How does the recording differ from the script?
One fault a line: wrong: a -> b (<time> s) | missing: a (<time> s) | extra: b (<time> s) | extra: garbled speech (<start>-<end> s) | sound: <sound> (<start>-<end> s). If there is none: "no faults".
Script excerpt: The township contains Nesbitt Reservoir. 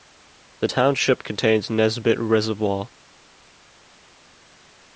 no faults